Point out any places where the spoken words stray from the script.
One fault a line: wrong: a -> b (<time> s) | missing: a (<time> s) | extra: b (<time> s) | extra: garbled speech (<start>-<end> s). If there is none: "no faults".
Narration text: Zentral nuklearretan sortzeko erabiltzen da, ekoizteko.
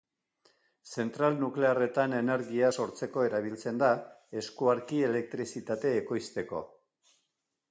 extra: energia (2.2 s)
extra: eskuarki elektrizitate (4.4 s)